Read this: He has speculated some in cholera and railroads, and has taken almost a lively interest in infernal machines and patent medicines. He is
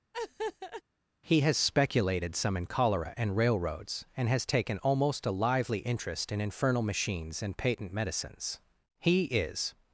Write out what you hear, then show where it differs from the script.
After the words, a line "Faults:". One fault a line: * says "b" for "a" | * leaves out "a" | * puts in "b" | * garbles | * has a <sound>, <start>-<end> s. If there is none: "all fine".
He has speculated some in cholera and railroads, and has taken almost a lively interest in infernal machines and patent medicines. He is
Faults:
* has a laugh, 0.1-0.8 s